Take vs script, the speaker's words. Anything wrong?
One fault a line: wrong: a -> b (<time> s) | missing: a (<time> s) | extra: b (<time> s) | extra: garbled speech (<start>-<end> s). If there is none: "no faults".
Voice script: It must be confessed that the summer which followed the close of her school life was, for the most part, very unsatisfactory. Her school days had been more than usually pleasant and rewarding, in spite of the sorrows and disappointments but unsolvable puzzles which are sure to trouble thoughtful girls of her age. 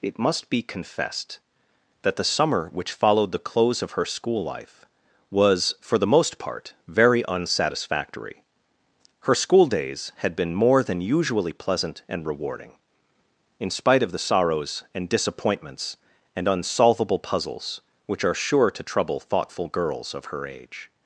wrong: but -> and (16.4 s)